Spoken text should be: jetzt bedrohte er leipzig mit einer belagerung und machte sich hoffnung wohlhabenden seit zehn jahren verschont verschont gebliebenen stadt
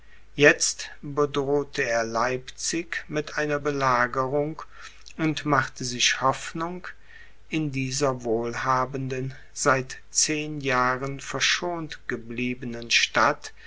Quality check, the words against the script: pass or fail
fail